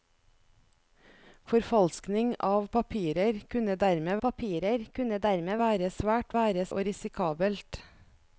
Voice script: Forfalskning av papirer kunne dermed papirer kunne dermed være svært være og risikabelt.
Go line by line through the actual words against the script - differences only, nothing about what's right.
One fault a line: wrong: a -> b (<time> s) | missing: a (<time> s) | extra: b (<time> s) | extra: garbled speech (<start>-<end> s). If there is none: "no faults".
no faults